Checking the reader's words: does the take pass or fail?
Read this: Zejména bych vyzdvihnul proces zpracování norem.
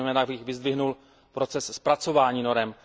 pass